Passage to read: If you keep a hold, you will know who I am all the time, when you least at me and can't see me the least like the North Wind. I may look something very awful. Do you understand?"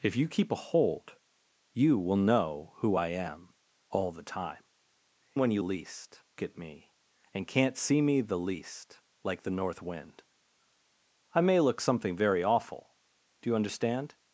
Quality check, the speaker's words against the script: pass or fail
pass